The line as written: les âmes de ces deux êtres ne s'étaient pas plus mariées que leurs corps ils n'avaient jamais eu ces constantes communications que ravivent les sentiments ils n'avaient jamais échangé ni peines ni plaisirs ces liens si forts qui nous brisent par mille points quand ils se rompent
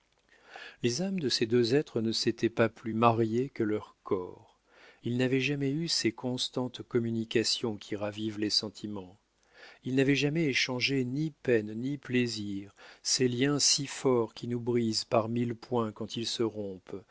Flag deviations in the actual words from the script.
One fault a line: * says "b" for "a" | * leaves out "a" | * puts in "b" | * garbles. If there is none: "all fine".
* says "qui" for "que"